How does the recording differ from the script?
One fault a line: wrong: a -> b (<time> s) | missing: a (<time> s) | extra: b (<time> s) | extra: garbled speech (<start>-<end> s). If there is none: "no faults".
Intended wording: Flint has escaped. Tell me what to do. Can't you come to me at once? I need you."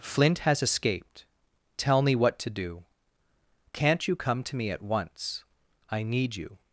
no faults